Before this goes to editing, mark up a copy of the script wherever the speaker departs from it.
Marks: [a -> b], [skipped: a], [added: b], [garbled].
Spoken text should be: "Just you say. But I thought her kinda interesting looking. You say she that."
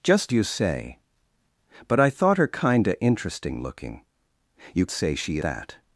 "Just you say. But I thought her kinda interesting looking. You say she that."